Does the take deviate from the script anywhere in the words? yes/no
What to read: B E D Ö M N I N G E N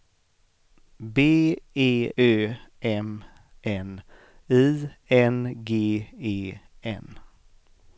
yes